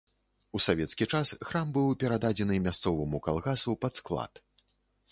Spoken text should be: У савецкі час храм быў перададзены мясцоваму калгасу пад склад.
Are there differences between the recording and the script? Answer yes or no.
no